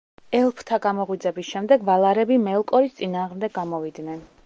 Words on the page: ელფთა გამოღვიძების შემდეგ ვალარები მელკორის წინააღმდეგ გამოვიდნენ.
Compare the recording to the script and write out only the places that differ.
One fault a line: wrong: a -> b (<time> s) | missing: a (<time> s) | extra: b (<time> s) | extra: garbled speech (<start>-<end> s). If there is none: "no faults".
no faults